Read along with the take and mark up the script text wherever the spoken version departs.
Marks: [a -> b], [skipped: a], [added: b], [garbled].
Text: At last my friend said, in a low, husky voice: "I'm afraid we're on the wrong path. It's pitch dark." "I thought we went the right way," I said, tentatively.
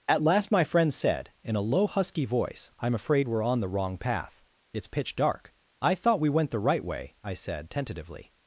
At last my friend said, in a low, husky voice: "I'm afraid we're on the wrong path. It's pitch dark." "I thought we went the right way," I said, tentatively.